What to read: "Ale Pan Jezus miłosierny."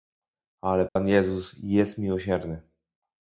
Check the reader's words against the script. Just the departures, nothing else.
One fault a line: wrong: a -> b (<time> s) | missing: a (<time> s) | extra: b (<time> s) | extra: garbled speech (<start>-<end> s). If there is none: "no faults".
extra: jest (1.6 s)